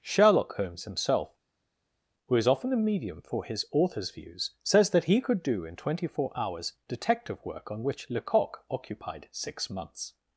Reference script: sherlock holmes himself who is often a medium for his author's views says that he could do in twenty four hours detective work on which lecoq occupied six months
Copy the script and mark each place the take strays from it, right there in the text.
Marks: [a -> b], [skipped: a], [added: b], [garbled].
sherlock holmes himself who is often a medium for his author's views says that he could do in twenty four hours detective work on which lecoq occupied six months